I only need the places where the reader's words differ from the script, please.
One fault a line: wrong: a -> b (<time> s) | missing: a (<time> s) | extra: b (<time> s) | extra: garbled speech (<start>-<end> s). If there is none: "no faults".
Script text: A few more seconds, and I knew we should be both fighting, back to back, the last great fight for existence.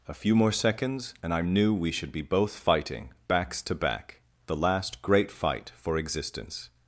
wrong: back -> backs (3.3 s)